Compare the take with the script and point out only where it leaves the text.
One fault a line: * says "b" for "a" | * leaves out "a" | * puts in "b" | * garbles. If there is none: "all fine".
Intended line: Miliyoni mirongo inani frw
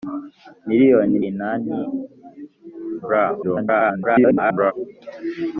* leaves out "mirongo"
* garbles